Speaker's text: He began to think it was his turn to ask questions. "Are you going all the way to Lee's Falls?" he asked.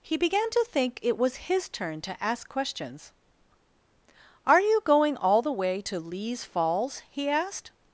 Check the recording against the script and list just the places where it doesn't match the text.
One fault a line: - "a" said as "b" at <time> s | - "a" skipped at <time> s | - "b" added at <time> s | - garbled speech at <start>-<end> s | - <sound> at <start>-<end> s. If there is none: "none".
none